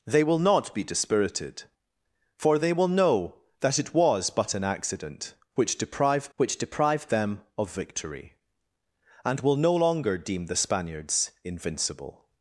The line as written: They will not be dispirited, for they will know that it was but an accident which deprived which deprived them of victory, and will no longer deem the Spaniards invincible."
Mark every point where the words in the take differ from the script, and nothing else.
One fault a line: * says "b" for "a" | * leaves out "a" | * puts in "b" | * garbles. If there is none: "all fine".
all fine